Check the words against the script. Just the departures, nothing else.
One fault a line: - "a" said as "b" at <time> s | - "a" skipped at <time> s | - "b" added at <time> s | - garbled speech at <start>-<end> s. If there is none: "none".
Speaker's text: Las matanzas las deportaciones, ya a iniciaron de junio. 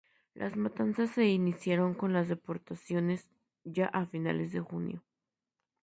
- "se iniciaron con" added at 1.1 s
- "iniciaron" said as "finales" at 4.1 s